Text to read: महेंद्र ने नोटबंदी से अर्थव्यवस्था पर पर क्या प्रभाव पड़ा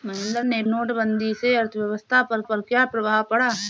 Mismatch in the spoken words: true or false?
false